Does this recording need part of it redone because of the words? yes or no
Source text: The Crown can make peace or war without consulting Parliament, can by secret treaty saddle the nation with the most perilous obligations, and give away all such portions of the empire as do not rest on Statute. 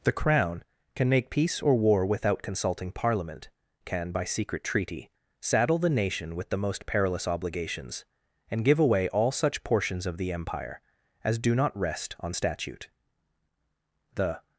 yes